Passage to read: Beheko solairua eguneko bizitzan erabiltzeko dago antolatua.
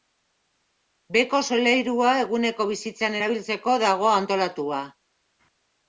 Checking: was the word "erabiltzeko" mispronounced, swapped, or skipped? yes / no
no